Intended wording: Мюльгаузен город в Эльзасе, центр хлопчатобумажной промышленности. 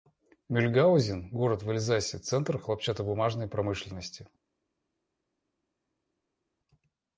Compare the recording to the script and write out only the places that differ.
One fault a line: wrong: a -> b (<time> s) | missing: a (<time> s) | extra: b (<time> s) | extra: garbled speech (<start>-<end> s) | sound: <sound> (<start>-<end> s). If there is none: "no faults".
no faults